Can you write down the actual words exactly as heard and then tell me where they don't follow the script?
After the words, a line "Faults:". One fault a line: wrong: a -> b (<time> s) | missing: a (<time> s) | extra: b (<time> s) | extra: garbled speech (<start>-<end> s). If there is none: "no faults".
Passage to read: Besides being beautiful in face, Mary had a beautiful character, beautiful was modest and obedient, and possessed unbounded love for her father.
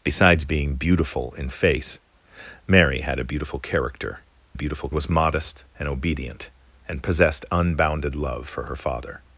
Besides being beautiful in face, Mary had a beautiful character, beautiful was modest and obedient, and possessed unbounded love for her father.
Faults:
no faults